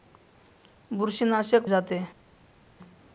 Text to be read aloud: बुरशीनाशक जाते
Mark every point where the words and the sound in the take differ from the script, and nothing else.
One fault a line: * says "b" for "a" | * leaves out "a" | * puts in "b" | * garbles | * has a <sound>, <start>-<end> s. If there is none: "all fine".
all fine